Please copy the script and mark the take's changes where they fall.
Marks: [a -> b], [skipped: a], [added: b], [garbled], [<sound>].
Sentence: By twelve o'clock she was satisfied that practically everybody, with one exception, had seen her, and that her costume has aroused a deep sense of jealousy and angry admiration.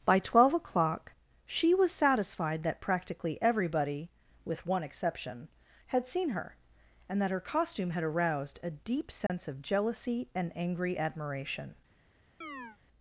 By twelve o'clock she was satisfied that practically everybody, with one exception, had seen her, and that her costume [has -> had] aroused a deep sense [dropout] of jealousy and angry admiration. [chirp]